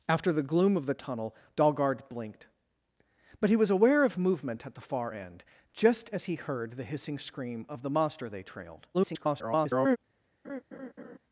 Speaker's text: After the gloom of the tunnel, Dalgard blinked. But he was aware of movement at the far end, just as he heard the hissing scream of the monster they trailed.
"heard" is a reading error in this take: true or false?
false